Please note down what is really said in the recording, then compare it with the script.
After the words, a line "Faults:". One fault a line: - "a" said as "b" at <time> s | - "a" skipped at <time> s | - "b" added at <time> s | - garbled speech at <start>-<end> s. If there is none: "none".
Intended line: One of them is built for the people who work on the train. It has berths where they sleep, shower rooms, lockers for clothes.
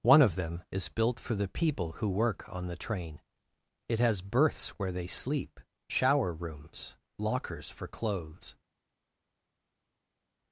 One of them is built for the people who work on the train. It has berths where they sleep, shower rooms, lockers for clothes.
Faults:
none